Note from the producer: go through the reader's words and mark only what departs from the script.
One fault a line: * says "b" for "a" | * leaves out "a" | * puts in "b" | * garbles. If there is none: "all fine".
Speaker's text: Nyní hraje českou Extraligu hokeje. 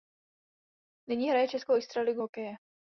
all fine